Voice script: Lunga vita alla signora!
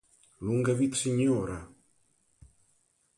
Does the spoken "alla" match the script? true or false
false